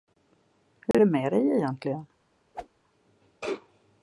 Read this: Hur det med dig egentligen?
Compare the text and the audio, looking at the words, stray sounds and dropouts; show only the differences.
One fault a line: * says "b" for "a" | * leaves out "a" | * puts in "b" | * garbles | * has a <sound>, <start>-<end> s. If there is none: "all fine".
* has a dropout, 0.9-0.9 s
* has a whoosh, 2.5-2.7 s